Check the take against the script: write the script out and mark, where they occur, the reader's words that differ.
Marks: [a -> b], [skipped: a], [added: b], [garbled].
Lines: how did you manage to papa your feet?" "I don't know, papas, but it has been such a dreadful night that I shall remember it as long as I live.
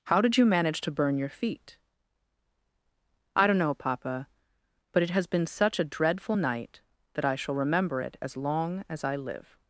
how did you manage to [papa -> burn] your feet?" "I don't know, [papas, -> papa] but it has been such a dreadful night that I shall remember it as long as I live.